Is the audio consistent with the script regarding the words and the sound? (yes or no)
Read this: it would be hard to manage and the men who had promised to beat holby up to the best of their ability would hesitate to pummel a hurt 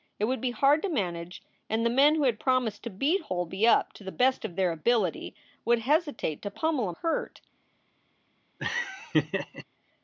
no